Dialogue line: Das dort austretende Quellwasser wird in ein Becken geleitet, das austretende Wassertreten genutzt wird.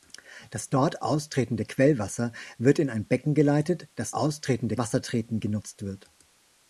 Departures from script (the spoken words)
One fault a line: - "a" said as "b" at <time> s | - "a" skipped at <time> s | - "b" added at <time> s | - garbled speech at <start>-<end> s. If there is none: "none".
none